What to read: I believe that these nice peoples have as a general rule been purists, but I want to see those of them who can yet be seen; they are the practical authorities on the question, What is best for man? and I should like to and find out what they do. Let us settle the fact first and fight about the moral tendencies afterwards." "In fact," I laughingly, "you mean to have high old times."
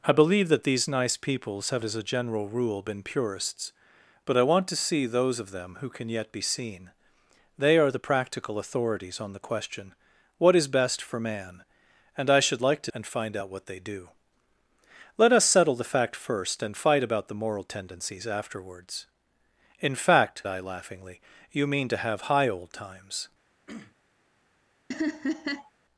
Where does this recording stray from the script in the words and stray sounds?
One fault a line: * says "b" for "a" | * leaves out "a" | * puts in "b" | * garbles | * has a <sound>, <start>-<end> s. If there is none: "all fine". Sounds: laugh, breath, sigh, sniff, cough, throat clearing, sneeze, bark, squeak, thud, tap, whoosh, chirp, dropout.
* has a throat clearing, 23.7-24.0 s
* has a laugh, 24.9-25.7 s